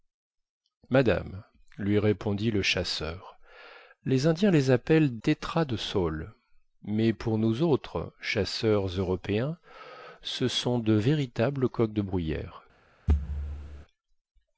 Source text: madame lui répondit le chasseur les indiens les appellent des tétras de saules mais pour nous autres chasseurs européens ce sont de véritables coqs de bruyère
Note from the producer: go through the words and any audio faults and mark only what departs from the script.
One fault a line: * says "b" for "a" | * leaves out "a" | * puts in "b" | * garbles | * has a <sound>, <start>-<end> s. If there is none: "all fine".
* leaves out "des"
* has a thud, 13.1-13.9 s